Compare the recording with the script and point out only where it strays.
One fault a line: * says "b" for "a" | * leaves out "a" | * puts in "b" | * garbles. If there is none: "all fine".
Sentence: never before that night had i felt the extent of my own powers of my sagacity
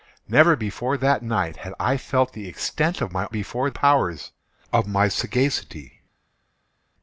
* says "before" for "own"